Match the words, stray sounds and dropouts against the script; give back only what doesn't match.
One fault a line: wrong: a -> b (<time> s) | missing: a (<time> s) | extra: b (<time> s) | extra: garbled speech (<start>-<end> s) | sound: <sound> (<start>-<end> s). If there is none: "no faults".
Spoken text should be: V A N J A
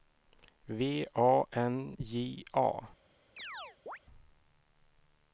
sound: chirp (3.4-4.0 s)